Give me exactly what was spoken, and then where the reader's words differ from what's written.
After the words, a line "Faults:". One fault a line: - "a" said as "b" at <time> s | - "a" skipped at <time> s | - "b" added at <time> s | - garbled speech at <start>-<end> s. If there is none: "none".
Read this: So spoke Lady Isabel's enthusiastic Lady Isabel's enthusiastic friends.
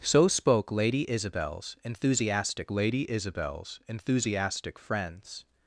So spoke Lady Isabel's enthusiastic Lady Isabel's enthusiastic friends.
Faults:
none